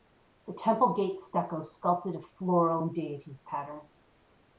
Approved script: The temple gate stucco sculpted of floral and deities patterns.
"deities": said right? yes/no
yes